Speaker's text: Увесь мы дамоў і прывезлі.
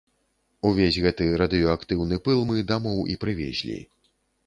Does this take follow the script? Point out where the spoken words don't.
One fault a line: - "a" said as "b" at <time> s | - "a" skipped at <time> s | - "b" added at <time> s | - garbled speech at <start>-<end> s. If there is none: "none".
- "гэты радыеактыўны пыл" added at 1.0 s